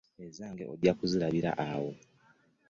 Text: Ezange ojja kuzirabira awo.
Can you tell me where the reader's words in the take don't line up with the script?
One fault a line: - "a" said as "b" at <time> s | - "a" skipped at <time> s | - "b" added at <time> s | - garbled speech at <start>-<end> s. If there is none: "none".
none